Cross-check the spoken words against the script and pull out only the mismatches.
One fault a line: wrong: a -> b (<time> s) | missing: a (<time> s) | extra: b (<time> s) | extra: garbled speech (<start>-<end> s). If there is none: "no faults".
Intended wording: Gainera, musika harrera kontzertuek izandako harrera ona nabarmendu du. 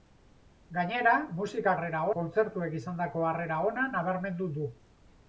no faults